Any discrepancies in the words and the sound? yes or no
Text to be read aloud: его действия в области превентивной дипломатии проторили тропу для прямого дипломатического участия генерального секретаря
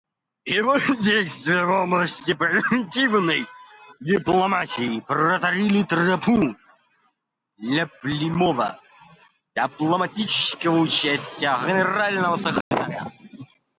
yes